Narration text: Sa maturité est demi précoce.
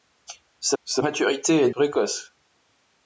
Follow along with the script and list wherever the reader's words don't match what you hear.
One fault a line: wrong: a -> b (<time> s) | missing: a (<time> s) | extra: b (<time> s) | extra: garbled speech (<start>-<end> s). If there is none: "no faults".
extra: sa (0.8 s)
missing: demi (1.7 s)